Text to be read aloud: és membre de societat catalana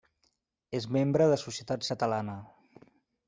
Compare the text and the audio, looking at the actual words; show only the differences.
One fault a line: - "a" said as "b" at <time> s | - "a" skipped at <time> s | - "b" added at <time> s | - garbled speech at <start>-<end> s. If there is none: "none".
none